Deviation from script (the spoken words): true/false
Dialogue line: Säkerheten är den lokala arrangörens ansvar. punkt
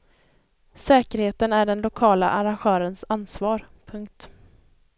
false